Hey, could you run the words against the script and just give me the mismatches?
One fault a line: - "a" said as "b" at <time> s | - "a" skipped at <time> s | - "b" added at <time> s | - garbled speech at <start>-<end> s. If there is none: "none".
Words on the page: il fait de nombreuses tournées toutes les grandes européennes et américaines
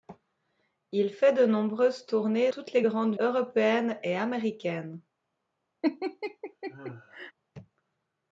none